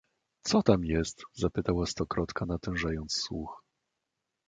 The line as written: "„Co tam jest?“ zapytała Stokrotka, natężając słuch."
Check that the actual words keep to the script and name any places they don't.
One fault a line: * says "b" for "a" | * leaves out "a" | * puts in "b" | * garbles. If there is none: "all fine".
all fine